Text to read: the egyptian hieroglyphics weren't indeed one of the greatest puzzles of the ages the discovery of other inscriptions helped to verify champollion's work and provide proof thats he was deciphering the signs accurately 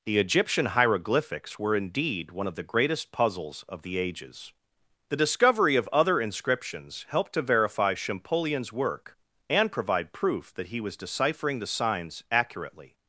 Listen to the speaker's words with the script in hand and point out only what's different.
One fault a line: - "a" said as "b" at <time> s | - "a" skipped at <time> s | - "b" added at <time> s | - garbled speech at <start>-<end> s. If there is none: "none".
- "weren't" said as "were" at 1.6 s
- "thats" said as "that" at 10.6 s